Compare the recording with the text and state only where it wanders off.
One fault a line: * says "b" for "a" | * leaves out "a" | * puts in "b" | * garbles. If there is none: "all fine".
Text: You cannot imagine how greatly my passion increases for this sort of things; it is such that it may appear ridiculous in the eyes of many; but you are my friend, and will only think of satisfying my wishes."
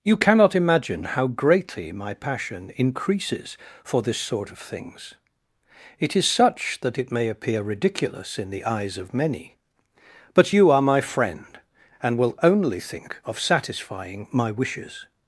all fine